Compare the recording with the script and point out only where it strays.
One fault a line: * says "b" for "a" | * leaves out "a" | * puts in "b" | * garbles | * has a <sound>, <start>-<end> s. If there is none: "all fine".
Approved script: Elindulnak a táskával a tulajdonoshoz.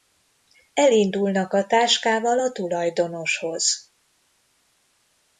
all fine